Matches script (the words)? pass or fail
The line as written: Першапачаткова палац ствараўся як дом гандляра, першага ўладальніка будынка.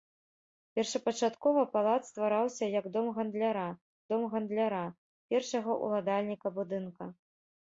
fail